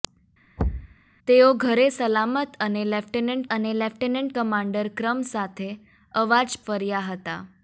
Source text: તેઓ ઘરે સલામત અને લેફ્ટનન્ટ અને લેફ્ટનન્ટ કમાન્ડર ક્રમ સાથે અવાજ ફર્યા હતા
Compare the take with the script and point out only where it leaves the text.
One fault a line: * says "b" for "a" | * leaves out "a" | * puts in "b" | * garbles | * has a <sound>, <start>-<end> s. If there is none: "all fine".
* has a thud, 0.6-1.0 s